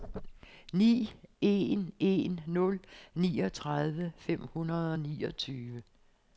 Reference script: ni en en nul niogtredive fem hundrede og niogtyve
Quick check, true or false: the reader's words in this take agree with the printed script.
true